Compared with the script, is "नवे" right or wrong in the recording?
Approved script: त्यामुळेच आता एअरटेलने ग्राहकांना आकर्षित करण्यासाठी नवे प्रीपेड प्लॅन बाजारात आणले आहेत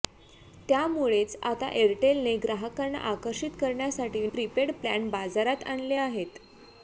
wrong